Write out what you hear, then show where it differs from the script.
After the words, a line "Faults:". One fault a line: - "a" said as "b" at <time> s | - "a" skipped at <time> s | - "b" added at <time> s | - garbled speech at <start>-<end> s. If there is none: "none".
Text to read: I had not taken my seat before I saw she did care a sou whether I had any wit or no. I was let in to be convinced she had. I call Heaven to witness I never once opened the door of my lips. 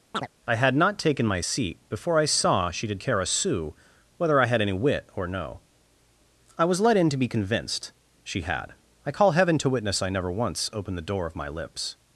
I had not taken my seat before I saw she did care a sou whether I had any wit or no. I was let in to be convinced she had. I call Heaven to witness I never once opened the door of my lips.
Faults:
none